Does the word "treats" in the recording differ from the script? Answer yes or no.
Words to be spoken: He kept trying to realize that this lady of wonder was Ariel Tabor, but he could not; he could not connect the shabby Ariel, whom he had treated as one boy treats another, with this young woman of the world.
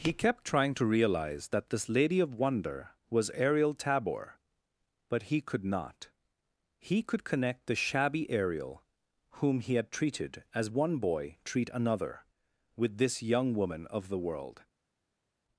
yes